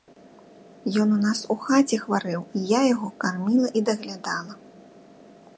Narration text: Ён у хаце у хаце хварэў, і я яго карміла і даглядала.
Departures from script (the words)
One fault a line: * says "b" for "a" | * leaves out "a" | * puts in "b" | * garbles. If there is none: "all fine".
* says "нас" for "хаце"